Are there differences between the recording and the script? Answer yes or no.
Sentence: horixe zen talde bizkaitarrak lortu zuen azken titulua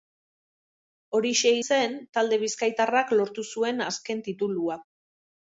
no